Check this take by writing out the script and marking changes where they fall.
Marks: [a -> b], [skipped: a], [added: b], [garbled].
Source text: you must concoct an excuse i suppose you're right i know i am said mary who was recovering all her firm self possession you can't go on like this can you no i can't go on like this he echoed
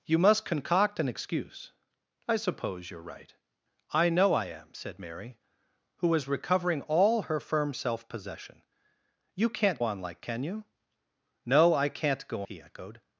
you must concoct an excuse i suppose you're right i know i am said mary who was recovering all her firm self possession you can't [skipped: go] on like [skipped: this] can you no i can't go [skipped: on like this] he echoed